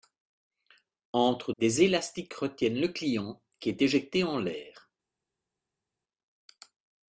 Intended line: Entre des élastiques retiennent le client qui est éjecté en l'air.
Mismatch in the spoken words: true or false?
false